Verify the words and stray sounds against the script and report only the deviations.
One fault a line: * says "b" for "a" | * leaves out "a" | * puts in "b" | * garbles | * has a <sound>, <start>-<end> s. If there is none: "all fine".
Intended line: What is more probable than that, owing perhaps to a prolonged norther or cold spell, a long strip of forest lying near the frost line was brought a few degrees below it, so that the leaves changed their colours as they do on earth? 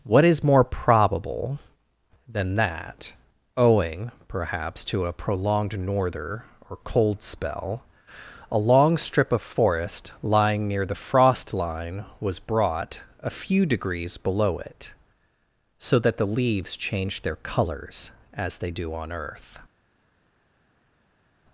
all fine